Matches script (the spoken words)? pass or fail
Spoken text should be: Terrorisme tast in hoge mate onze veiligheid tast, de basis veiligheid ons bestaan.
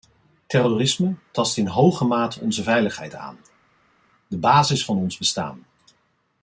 fail